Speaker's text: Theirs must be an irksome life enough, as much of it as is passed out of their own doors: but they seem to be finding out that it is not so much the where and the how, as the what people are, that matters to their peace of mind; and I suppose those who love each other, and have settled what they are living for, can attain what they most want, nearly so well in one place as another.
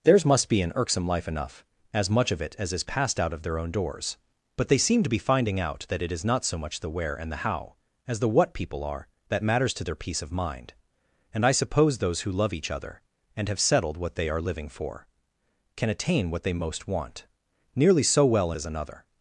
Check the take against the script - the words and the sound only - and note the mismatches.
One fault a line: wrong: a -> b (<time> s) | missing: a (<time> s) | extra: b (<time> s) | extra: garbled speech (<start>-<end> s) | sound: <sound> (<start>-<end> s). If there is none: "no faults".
missing: in one place (18.5 s)